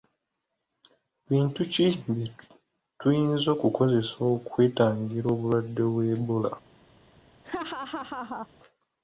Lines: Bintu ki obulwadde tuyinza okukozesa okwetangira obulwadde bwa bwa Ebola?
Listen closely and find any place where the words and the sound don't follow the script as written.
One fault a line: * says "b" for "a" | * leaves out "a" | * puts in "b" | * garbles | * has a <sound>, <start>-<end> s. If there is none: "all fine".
* says "bye" for "obulwadde"
* leaves out "bwa"
* has a laugh, 7.4-8.5 s